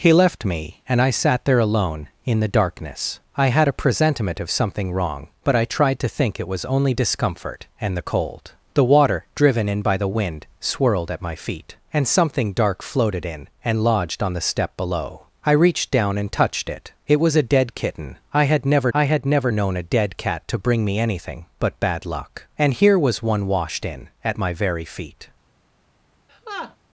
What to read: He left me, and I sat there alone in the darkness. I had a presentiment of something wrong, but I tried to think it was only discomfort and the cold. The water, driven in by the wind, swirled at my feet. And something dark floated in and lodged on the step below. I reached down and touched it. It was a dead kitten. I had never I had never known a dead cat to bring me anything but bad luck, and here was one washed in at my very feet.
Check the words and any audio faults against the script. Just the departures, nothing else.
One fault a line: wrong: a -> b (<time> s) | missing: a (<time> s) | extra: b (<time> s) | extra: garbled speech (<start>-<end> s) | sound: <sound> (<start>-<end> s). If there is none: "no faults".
sound: laugh (26.3-26.8 s)